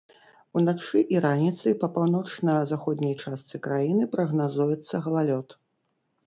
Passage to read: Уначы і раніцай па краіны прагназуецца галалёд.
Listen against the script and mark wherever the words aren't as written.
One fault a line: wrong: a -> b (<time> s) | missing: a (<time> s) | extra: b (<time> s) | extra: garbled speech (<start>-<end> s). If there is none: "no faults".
extra: паўночна заходняй частцы (2.0 s)